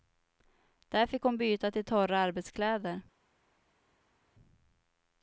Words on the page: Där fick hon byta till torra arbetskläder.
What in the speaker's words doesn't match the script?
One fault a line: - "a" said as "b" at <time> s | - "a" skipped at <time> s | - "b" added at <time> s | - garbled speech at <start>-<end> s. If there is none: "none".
none